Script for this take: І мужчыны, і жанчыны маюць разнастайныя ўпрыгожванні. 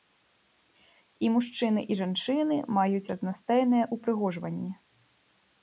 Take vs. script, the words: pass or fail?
pass